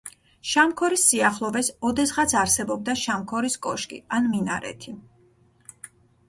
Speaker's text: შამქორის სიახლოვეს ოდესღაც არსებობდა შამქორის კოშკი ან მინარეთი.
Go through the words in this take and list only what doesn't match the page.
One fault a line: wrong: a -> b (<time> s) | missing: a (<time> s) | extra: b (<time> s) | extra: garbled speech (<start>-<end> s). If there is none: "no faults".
no faults